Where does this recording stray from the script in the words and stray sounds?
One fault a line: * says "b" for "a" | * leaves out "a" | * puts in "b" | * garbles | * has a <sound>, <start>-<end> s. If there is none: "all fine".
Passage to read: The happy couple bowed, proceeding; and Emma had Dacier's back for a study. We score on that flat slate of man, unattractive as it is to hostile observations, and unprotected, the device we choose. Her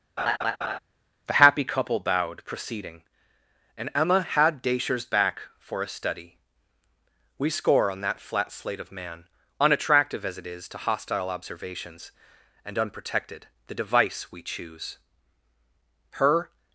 * has a laugh, 0.2-0.8 s